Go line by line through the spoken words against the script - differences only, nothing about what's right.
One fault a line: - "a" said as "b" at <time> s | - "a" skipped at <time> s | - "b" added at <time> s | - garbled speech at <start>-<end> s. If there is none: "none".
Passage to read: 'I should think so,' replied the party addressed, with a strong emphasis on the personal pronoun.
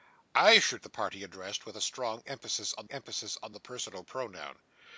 - "think so replied" skipped at 0.8 s
- "emphasis on" added at 2.9 s